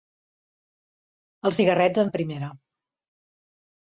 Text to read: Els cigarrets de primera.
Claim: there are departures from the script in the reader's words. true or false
false